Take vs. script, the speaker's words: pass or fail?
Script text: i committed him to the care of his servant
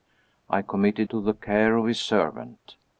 fail